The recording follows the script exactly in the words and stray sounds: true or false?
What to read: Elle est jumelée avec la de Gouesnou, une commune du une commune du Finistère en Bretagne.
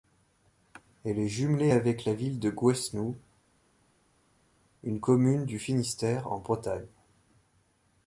false